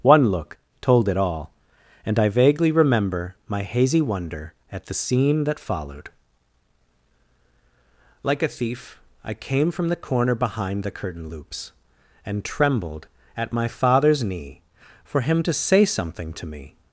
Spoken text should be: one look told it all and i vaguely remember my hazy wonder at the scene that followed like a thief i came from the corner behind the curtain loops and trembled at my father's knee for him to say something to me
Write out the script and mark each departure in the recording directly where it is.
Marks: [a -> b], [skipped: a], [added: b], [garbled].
one look told it all and i vaguely remember my hazy wonder at the scene that followed like a thief i came from the corner behind the curtain loops and trembled at my father's knee for him to say something to me